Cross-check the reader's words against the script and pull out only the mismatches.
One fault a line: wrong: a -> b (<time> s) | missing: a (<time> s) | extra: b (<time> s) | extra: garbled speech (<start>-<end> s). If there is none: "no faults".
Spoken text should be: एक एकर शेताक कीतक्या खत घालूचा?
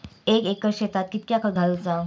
no faults